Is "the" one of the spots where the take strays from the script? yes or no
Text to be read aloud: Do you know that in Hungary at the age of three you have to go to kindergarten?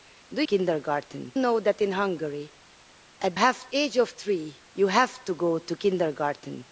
yes